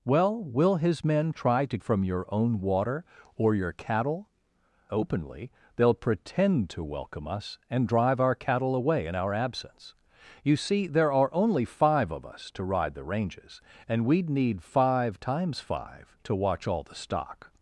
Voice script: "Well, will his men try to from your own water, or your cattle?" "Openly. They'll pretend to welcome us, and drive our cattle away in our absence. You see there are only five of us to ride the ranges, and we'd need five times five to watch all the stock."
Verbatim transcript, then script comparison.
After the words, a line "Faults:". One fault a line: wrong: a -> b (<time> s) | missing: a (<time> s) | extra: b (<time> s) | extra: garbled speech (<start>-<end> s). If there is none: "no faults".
"Well, will his men try to from your own water, or your cattle?" "Openly. They'll pretend to welcome us, and drive our cattle away in our absence. You see there are only five of us to ride the ranges, and we'd need five times five to watch all the stock."
Faults:
no faults